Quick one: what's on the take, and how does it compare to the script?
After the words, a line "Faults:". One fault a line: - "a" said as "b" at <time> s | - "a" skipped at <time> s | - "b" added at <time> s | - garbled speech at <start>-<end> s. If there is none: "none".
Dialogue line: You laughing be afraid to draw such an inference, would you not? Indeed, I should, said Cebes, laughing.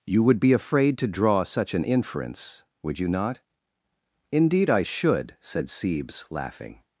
You would be afraid to draw such an inference, would you not? Indeed, I should, said Cebes, laughing.
Faults:
- "laughing" said as "would" at 0.2 s